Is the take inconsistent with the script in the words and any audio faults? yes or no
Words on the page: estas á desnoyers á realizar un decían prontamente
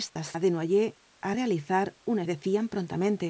yes